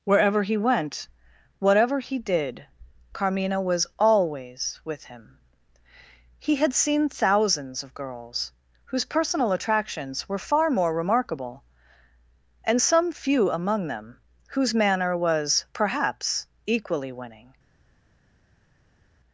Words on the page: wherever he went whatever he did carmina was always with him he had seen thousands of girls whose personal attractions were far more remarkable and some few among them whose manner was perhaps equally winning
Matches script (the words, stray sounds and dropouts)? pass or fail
pass